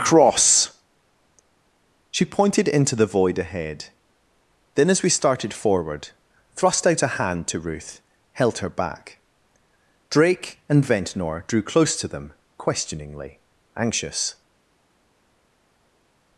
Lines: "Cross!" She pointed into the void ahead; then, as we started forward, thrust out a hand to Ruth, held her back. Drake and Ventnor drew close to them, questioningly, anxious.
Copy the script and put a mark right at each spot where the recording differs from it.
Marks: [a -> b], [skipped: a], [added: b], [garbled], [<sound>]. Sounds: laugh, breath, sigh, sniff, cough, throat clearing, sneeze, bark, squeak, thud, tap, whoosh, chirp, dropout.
"Cross!" She pointed into the void ahead; then, as we started forward, thrust out a hand to Ruth, held her back. Drake and Ventnor drew close to them, questioningly, anxious.